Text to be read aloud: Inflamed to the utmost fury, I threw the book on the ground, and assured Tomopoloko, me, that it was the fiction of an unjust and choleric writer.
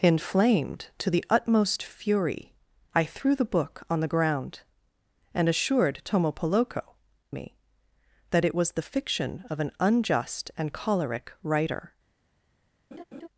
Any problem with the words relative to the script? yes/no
no